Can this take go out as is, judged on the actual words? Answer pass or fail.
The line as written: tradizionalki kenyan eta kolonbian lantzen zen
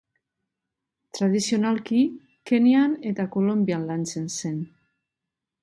pass